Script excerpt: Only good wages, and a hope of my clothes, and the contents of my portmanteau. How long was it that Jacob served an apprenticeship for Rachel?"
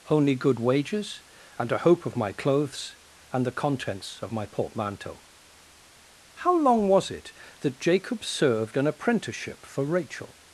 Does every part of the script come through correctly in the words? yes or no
yes